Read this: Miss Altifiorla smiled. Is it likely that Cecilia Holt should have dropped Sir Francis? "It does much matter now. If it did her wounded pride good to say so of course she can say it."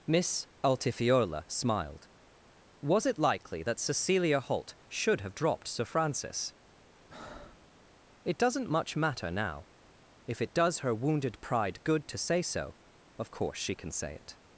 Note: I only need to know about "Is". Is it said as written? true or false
false